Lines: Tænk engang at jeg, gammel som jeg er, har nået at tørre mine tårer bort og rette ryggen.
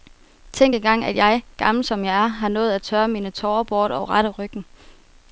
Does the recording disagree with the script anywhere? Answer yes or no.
no